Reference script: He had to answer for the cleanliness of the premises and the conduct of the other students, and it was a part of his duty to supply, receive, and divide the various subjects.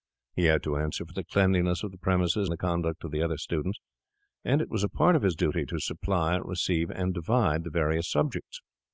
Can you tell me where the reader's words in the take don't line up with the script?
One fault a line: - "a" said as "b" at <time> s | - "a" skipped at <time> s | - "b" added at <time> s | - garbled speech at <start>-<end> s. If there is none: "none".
- "and" skipped at 2.5 s